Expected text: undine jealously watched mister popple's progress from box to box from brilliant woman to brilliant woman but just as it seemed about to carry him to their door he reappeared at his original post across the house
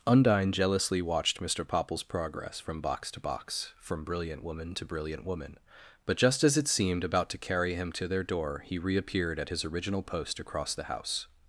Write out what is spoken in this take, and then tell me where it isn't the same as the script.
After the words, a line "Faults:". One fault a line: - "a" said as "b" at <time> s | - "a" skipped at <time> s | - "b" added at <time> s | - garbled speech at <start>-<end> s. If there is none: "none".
undine jealously watched mister popple's progress from box to box from brilliant woman to brilliant woman but just as it seemed about to carry him to their door he reappeared at his original post across the house
Faults:
none